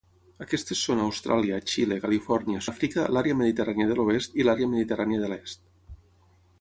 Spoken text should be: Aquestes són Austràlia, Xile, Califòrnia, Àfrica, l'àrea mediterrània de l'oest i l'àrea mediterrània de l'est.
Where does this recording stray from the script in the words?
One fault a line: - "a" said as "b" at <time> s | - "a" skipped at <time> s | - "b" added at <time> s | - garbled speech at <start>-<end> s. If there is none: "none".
none